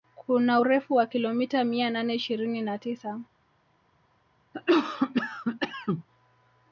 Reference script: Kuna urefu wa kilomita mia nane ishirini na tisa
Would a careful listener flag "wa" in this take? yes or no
no